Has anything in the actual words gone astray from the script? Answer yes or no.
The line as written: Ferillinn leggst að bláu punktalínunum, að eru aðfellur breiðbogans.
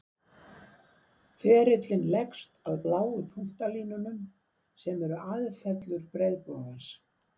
yes